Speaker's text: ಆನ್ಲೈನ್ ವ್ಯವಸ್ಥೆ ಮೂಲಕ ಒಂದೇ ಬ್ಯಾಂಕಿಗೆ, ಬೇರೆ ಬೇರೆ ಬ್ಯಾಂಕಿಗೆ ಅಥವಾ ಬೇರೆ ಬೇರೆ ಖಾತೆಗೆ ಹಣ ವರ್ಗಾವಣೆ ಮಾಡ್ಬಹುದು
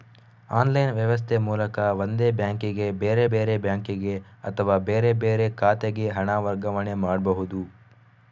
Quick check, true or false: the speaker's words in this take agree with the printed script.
true